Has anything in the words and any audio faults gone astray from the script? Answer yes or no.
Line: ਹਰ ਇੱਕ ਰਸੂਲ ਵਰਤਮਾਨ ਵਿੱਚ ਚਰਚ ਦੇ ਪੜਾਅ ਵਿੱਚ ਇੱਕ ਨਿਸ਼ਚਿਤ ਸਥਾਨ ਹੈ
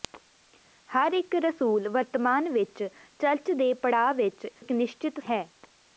yes